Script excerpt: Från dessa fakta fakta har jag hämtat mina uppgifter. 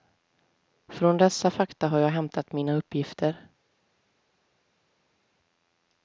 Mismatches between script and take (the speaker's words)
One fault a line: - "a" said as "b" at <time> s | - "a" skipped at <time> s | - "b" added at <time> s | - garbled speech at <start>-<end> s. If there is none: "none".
- "fakta" skipped at 1.9 s